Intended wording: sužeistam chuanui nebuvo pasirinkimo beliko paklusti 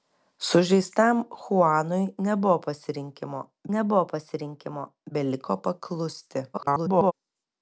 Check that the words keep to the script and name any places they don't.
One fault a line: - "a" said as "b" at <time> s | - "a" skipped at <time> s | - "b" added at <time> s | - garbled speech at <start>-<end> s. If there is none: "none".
- "nebuvo pasirinkimo" added at 3.8 s
- garbled speech at 6.5-7.1 s